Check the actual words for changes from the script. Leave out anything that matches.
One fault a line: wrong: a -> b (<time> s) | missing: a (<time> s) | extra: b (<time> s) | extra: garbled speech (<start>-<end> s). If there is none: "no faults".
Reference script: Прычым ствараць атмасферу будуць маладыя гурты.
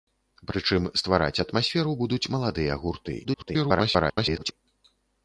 extra: garbled speech (3.2-4.5 s)